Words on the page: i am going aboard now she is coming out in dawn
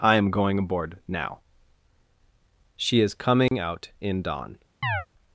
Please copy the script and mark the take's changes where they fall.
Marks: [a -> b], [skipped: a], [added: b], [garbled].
i am going aboard now she is coming out in dawn